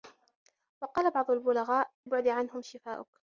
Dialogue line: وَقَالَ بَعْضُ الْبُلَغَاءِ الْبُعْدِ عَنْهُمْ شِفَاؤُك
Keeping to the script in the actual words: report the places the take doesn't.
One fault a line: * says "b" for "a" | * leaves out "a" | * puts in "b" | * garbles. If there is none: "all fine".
all fine